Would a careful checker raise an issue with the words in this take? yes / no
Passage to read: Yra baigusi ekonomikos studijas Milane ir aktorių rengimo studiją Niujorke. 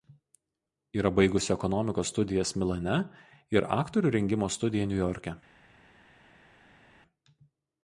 no